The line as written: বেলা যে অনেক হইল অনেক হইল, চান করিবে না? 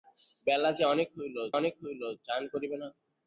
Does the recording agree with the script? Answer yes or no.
yes